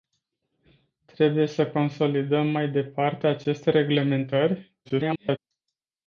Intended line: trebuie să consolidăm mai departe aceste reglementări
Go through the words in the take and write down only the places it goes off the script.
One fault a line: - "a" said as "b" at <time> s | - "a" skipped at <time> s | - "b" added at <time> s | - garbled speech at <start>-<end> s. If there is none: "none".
- garbled speech at 4.8-5.4 s